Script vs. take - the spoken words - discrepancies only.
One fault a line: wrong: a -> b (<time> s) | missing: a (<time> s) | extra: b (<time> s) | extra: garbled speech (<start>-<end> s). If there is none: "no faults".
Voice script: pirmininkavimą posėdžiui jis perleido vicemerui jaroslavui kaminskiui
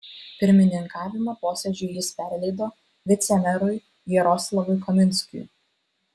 no faults